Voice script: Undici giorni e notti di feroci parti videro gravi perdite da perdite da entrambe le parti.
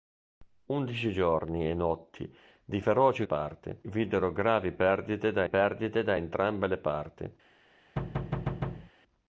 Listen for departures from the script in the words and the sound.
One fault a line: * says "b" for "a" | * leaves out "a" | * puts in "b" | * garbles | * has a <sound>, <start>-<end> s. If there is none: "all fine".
* has a thud, 8.0-8.9 s